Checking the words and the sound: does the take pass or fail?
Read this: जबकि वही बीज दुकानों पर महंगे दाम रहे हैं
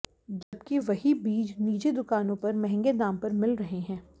fail